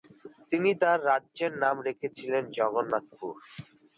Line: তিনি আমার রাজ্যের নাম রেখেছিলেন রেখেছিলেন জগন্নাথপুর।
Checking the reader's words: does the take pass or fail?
fail